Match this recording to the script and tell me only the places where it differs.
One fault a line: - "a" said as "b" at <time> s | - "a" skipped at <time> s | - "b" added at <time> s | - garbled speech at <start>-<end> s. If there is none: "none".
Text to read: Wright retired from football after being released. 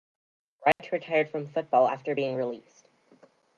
none